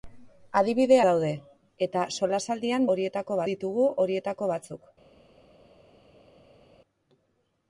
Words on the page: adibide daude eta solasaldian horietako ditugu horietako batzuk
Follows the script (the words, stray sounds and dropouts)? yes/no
yes